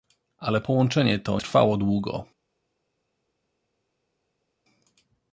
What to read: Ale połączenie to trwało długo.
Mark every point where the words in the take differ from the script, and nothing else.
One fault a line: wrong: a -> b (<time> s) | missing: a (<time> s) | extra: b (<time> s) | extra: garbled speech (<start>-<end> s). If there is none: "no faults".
no faults